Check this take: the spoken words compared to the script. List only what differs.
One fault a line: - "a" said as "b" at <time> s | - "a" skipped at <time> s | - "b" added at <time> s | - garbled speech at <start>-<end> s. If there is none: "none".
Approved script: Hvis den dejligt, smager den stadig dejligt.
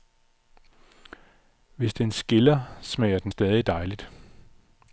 - "dejligt" said as "skiller" at 2.1 s